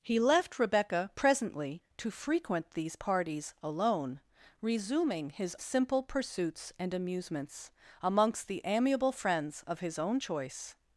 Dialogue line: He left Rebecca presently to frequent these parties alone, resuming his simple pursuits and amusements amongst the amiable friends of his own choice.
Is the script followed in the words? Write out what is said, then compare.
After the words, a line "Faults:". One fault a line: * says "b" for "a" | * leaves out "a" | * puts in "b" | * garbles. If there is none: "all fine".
He left Rebecca presently to frequent these parties alone, resuming his simple pursuits and amusements amongst the amiable friends of his own choice.
Faults:
all fine